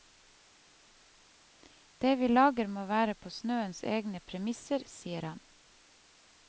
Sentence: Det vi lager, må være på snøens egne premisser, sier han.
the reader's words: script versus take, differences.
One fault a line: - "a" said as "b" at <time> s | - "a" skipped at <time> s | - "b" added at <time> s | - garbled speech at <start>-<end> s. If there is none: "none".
none